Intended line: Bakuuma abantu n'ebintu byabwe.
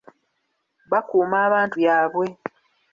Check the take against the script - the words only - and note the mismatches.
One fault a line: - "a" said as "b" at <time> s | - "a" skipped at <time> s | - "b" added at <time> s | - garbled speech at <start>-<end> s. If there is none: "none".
- "n'ebintu" skipped at 1.8 s